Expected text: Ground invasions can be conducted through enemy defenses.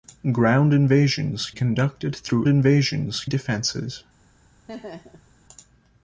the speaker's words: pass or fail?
fail